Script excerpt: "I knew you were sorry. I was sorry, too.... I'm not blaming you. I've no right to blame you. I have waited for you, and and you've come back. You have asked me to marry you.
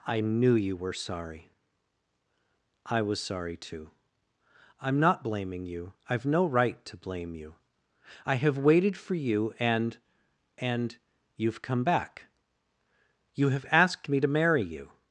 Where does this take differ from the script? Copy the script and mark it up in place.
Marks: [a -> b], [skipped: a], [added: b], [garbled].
"I knew you were sorry. I was sorry, too.... I'm not blaming you. I've no right to blame you. I have waited for you, and and you've come back. You have asked me to marry you.